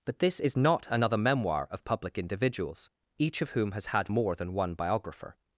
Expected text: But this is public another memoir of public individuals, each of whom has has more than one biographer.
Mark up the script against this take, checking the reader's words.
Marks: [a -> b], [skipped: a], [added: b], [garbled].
But this is [public -> not] another memoir of public individuals, each of whom has [has -> had] more than one biographer.